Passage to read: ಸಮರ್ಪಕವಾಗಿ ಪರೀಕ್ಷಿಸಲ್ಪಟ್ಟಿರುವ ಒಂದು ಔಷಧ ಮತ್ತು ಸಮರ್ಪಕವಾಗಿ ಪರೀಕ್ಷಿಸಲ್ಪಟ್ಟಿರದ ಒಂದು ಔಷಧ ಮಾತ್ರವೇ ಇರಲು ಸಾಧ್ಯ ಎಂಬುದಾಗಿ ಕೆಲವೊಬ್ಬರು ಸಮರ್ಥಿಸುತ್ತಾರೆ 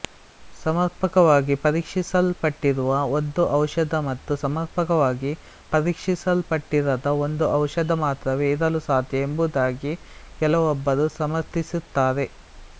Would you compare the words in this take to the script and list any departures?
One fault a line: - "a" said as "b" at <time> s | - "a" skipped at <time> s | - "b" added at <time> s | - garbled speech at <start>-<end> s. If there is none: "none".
none